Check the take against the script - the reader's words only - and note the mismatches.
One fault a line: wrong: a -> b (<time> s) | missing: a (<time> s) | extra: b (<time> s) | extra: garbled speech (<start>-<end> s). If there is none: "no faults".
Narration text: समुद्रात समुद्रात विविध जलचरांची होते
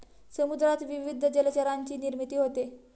missing: समुद्रात (0.8 s)
extra: निर्मिती (2.0 s)